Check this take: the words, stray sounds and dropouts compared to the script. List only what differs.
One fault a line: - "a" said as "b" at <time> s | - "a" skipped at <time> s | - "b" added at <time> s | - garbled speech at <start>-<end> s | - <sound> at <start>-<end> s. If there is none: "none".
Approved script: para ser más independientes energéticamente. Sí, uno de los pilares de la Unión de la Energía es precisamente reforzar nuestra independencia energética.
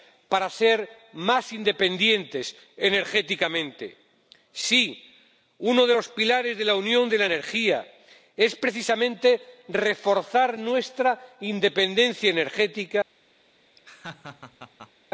- laugh at 13.8-14.9 s